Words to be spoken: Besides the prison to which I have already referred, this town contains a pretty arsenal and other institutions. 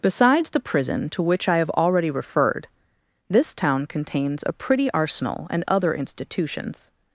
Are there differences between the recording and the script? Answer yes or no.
no